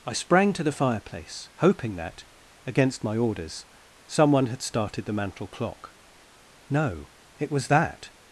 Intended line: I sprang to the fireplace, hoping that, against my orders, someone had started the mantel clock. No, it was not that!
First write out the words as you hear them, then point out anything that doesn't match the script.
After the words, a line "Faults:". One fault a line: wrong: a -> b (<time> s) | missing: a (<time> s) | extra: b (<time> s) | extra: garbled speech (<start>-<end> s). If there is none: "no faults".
I sprang to the fireplace, hoping that, against my orders, someone had started the mantel clock. No, it was that!
Faults:
missing: not (7.7 s)